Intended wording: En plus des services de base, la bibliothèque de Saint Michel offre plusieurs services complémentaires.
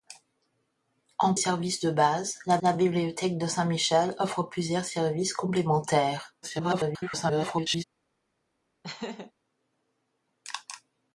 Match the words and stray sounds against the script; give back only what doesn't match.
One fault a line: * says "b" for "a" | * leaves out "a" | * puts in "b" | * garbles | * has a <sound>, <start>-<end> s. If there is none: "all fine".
* leaves out "plus des"
* puts in "la"
* garbles
* has a laugh, 8.8-9.3 s